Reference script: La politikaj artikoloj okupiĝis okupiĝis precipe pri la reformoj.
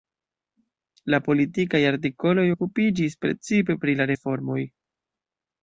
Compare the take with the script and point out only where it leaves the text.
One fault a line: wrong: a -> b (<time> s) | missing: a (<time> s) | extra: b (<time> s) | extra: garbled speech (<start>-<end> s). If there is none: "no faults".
missing: okupiĝis (3.2 s)